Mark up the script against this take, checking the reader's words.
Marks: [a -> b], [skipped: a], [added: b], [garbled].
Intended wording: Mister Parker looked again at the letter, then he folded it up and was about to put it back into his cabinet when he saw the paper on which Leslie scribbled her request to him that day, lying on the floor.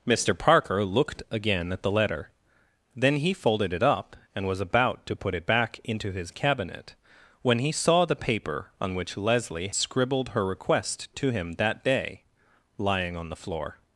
Mister Parker looked again at the letter, then he folded it up and was about to put it back into his cabinet when he saw the paper on which Leslie scribbled her request to him that day, lying on the floor.